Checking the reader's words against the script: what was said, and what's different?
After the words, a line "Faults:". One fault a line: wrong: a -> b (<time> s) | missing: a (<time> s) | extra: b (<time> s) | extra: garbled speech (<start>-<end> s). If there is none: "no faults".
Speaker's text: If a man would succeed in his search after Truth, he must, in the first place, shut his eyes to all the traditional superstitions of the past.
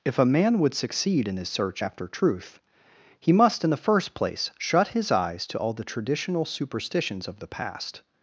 If a man would succeed in his search after Truth, he must, in the first place, shut his eyes to all the traditional superstitions of the past.
Faults:
no faults